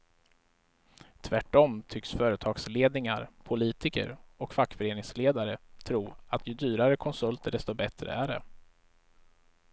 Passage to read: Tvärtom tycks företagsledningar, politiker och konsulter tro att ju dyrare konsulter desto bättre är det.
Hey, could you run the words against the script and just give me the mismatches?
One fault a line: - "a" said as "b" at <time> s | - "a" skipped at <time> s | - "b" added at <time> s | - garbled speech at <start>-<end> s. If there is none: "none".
- "konsulter" said as "fackföreningsledare" at 4.5 s